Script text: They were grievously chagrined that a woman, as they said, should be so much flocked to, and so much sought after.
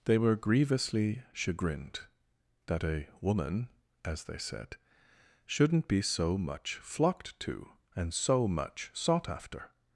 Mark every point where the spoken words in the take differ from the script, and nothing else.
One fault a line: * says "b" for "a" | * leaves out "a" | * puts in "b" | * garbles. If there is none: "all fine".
* says "shouldn't" for "should"